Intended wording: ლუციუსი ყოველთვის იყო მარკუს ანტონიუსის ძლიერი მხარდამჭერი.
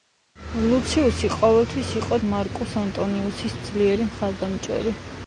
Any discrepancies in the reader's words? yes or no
no